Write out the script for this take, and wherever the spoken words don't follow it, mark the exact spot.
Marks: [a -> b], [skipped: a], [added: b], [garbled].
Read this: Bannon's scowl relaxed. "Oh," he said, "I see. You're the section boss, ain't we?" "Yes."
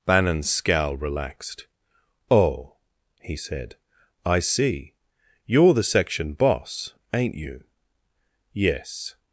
Bannon's scowl relaxed. "Oh," he said, "I see. You're the section boss, ain't [we?" -> you] "Yes."